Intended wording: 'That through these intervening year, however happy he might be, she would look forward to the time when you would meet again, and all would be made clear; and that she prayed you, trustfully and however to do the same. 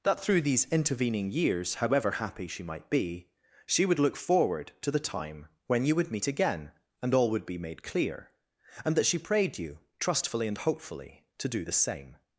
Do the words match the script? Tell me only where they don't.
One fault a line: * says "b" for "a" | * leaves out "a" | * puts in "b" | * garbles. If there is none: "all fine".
* says "years" for "year"
* says "she" for "he"
* says "hopefully" for "however"